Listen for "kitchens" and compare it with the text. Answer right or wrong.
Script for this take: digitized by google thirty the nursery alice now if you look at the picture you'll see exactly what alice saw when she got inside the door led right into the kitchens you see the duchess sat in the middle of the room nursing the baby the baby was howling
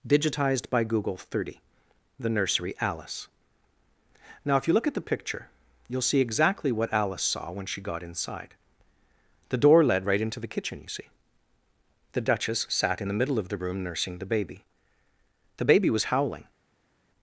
wrong